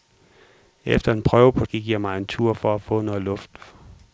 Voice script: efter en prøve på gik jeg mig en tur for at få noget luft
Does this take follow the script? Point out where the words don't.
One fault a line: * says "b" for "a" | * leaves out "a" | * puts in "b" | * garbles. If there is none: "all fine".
all fine